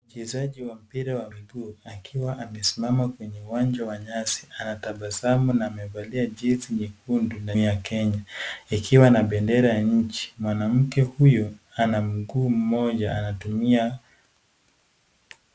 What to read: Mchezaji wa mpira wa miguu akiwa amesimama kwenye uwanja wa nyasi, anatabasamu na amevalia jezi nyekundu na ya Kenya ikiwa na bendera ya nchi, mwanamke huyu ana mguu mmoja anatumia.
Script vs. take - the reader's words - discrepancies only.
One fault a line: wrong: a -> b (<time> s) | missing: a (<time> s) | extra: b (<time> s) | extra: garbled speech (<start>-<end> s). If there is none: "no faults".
no faults